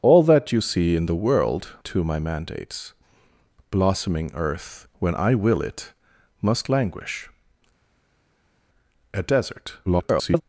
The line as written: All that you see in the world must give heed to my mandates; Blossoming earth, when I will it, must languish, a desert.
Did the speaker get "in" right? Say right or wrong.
right